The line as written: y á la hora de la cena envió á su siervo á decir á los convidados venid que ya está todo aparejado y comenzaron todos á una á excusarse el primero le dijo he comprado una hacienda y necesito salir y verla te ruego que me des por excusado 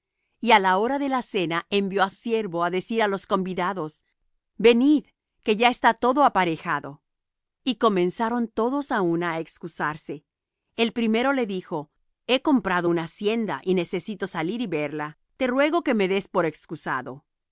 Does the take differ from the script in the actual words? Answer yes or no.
yes